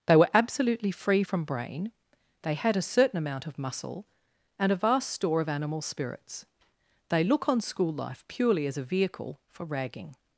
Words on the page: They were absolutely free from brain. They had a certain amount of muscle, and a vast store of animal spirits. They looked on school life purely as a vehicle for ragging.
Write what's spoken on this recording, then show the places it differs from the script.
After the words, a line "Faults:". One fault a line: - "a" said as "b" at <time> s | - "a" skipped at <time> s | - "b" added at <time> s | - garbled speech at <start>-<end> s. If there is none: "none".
They were absolutely free from brain. They had a certain amount of muscle, and a vast store of animal spirits. They look on school life purely as a vehicle for ragging.
Faults:
- "looked" said as "look" at 7.2 s